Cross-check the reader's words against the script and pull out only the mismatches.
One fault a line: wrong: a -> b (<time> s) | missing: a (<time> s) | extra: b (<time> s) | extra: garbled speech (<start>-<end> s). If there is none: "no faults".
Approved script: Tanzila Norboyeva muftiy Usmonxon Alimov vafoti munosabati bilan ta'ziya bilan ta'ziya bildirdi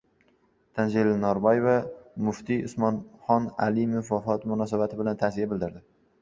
missing: bilan ta'ziya (5.5 s)